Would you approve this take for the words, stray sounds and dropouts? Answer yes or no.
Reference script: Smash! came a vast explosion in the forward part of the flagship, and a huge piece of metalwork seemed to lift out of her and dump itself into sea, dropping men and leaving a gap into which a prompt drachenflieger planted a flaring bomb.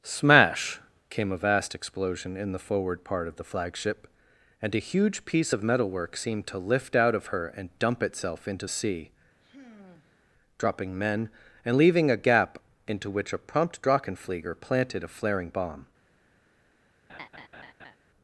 no